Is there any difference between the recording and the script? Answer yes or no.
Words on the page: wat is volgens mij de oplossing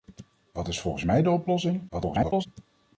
yes